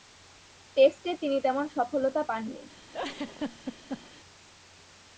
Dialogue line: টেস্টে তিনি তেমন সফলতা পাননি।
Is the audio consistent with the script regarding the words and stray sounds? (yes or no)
no